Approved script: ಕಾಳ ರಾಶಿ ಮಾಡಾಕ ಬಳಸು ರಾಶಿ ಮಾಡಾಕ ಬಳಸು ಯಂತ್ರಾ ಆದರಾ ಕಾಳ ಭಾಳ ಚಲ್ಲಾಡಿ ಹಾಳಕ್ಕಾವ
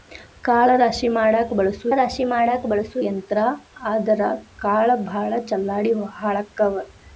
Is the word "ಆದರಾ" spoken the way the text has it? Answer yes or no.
yes